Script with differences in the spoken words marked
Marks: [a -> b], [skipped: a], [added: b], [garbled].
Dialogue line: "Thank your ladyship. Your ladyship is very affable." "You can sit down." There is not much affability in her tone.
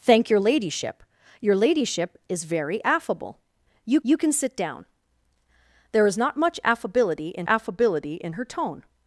"Thank your ladyship. Your ladyship is very affable." "You [added: you] can sit down." There is not much affability in [added: affability in] her tone.